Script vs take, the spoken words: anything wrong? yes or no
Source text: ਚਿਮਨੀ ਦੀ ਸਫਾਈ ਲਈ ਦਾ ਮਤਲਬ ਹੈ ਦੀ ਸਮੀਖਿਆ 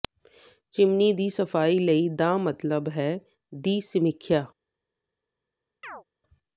no